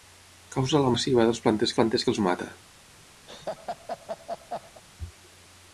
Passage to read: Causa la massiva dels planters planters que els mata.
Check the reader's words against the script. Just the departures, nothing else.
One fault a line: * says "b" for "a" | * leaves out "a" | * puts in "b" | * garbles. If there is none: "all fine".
all fine